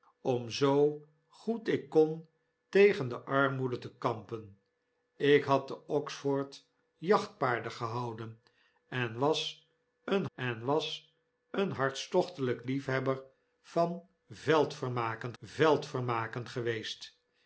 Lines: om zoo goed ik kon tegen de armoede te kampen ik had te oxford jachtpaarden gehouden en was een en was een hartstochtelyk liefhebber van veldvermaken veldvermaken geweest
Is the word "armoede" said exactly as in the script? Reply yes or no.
yes